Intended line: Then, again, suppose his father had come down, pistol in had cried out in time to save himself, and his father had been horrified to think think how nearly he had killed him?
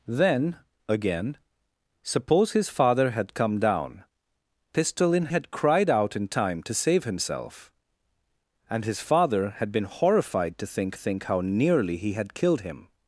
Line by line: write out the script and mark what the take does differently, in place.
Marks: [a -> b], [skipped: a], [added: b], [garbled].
Then, again, suppose his father had come down, pistol in had cried out in time to save himself, and his father had been horrified to think think how nearly he had killed him?